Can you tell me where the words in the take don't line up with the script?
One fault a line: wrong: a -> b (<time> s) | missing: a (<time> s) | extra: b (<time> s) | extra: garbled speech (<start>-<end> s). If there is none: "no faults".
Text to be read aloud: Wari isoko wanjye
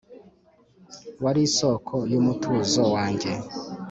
extra: yumutuzo (2.1 s)